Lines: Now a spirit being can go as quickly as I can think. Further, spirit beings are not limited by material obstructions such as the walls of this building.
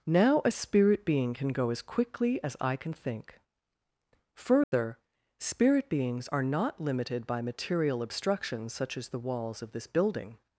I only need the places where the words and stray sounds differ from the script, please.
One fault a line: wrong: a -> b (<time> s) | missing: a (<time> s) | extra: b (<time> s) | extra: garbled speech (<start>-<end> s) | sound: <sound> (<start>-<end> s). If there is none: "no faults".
sound: dropout (4.6-4.7 s)